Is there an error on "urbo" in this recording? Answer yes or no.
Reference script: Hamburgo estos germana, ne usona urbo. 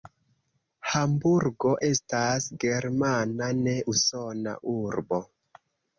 no